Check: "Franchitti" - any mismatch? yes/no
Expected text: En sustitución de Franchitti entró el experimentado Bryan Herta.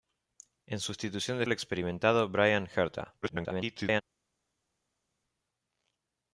yes